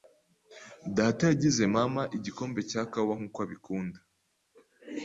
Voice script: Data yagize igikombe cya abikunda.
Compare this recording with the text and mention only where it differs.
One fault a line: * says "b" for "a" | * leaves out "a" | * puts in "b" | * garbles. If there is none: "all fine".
* puts in "mama"
* puts in "kawa nkuko"